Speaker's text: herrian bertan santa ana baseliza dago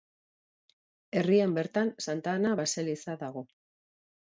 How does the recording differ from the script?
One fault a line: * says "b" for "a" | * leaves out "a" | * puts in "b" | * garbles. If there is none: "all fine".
all fine